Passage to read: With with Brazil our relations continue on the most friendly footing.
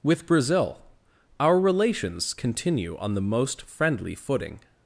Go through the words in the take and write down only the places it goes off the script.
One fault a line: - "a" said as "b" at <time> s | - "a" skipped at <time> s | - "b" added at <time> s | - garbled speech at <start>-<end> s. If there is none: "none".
- "with" skipped at 0.2 s